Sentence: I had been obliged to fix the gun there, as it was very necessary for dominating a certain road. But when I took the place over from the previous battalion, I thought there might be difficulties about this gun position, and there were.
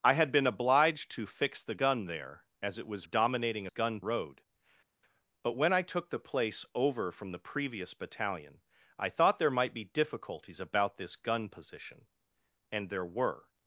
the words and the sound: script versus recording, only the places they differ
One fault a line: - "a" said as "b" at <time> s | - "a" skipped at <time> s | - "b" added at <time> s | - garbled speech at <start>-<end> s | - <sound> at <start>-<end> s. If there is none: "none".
- "very necessary for" skipped at 3.0 s
- "certain" said as "gun" at 3.7 s